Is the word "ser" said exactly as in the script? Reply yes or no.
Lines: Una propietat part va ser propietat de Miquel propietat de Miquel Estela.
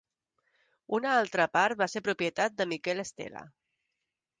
yes